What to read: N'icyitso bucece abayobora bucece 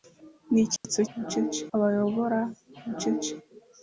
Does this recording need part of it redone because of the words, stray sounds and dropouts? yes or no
yes